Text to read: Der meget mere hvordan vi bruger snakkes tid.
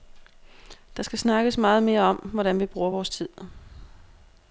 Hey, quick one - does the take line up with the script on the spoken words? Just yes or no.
no